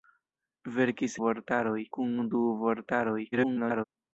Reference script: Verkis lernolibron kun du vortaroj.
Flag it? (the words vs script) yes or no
yes